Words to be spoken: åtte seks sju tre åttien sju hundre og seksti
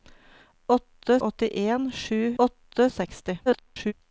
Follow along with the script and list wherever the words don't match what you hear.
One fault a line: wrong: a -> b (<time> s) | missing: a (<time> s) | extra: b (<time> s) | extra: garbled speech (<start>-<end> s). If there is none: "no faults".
missing: seks sju tre (1.2 s)
wrong: hundre -> åtte (2.4 s)
extra: garbled speech (3.5-3.9 s)